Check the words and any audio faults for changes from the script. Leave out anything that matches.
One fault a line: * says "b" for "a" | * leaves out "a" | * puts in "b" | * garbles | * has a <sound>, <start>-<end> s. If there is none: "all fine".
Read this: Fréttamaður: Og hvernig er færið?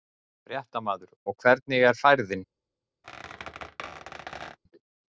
* has a squeak, 3.0-4.6 s